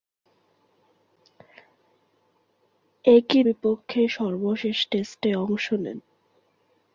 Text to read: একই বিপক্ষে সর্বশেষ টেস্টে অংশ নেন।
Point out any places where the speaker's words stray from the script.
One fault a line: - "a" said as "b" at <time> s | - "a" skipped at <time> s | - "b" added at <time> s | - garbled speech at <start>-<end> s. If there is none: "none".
none